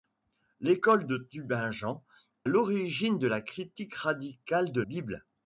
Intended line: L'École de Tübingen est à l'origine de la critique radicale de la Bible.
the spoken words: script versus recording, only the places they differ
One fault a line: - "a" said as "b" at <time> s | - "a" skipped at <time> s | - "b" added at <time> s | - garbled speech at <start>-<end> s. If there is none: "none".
- "est à" skipped at 2.0 s
- "la" skipped at 4.8 s